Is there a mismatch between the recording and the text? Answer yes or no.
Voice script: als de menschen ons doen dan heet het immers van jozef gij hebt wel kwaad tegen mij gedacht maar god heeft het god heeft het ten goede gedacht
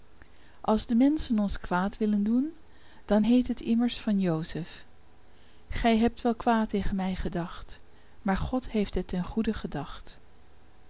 yes